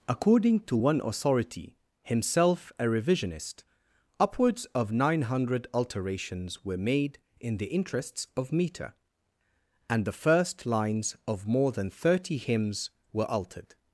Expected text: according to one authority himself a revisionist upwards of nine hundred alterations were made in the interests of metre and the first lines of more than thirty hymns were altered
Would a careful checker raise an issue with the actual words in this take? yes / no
no